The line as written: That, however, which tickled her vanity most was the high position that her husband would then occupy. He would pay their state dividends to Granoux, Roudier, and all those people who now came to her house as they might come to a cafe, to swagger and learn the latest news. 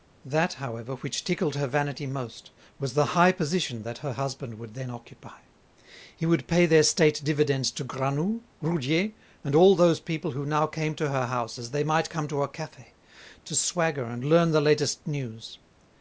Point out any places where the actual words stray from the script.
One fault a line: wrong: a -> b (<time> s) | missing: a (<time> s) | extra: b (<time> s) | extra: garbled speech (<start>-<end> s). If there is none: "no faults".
no faults